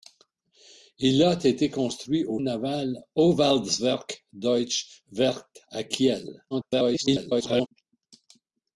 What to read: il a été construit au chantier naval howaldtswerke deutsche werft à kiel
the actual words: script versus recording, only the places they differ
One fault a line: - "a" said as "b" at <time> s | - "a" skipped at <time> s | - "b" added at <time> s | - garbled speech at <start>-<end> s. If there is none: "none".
- "chantier" skipped at 2.4 s
- garbled speech at 6.5-7.7 s